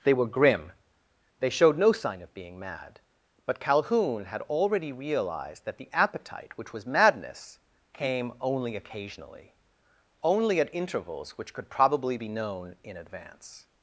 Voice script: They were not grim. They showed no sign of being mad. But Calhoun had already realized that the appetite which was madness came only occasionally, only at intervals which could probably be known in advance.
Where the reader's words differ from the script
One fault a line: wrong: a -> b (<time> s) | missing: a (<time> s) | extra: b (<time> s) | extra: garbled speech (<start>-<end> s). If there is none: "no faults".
missing: not (0.2 s)